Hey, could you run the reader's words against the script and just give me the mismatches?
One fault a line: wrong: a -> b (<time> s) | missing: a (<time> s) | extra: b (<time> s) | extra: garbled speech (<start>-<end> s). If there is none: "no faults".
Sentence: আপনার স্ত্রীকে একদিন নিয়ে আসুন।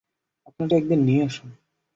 missing: স্ত্রীকে (0.7 s)